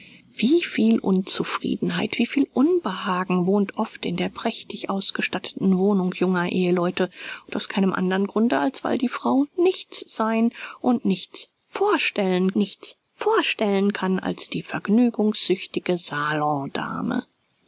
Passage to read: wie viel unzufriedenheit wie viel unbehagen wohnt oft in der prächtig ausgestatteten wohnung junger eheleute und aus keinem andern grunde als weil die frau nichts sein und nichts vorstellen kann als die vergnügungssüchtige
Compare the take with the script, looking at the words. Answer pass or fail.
fail